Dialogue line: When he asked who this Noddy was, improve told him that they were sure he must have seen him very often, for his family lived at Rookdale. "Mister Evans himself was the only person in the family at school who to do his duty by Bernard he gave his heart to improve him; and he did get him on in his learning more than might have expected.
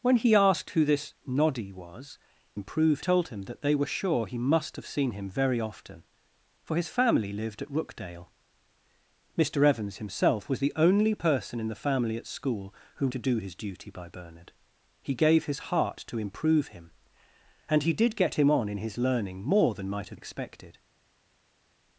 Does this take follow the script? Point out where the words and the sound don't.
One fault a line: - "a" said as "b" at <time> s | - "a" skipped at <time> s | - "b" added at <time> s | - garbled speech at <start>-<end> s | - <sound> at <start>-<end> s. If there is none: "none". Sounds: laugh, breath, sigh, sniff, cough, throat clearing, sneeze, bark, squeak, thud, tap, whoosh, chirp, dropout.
none